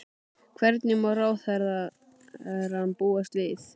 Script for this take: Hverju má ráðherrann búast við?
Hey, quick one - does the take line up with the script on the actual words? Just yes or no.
yes